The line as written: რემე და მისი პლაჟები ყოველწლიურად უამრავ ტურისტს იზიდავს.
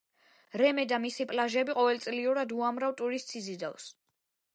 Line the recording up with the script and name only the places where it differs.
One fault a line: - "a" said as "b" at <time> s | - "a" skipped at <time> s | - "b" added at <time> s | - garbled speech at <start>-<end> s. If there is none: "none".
none